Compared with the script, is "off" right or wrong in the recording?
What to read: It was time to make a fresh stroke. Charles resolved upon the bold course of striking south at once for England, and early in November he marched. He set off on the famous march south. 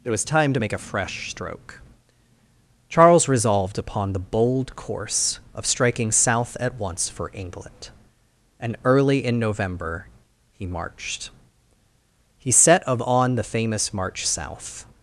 wrong